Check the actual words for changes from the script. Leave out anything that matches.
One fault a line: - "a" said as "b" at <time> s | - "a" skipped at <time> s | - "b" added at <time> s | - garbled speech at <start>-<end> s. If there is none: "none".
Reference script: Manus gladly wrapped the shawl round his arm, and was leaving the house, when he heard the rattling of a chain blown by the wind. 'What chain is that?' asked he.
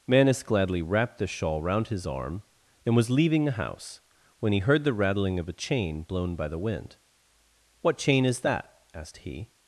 none